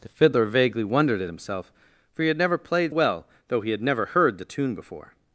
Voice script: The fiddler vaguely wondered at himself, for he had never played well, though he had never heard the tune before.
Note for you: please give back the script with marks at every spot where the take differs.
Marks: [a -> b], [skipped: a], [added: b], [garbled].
The fiddler vaguely wondered at himself, for he had never played well, though he had never heard the tune before.